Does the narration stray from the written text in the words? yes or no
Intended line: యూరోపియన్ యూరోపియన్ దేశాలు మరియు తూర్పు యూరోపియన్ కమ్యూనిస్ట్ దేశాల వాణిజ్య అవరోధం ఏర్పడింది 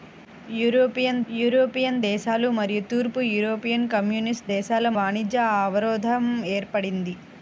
no